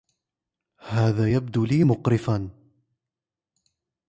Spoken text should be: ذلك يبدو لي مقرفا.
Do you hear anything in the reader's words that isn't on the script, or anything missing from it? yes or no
yes